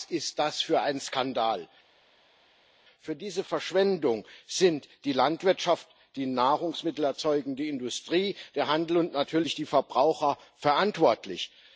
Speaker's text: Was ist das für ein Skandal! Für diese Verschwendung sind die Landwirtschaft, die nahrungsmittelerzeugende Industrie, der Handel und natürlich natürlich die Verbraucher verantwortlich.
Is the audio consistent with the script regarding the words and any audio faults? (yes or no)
no